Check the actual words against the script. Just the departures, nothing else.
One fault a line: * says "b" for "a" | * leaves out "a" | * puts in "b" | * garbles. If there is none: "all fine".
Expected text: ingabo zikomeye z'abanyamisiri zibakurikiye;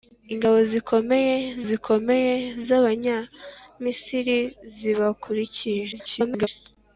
* puts in "zikomeye"
* garbles